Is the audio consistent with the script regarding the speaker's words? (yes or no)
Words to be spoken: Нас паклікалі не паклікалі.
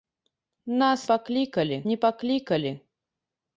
yes